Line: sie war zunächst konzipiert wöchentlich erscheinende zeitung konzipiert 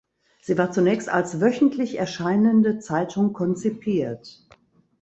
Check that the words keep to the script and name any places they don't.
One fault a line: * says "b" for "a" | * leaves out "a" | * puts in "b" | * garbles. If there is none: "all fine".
* says "als" for "konzipiert"